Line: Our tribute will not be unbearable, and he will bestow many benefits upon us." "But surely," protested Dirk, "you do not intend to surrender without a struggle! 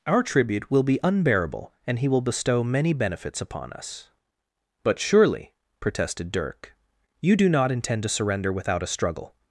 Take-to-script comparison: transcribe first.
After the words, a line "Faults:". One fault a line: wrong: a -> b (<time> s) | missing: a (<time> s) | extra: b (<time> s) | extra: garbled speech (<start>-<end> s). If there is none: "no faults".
Our tribute will be unbearable, and he will bestow many benefits upon us." "But surely," protested Dirk, "you do not intend to surrender without a struggle!
Faults:
missing: not (0.8 s)